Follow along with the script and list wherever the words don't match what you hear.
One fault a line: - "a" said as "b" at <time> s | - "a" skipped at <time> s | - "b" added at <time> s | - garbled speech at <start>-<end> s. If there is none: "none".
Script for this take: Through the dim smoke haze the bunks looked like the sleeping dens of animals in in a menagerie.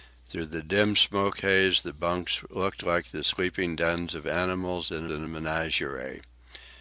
none